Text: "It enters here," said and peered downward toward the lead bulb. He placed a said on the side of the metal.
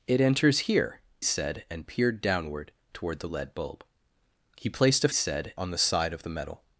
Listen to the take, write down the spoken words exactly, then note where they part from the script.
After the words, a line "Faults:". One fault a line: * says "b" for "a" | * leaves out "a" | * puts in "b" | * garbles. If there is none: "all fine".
"It enters here," said and peered downward toward the lead bulb. He placed a said on the side of the metal.
Faults:
all fine